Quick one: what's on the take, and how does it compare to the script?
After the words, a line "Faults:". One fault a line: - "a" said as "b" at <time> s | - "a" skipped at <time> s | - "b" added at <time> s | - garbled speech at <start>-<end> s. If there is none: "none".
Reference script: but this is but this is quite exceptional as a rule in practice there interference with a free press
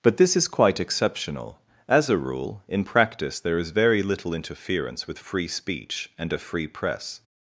but this is quite exceptional as a rule in practice there is very little interference with free speech and a free press
Faults:
- "but this is" skipped at 0.5 s
- "is very little" added at 3.6 s
- "free speech and" added at 5.2 s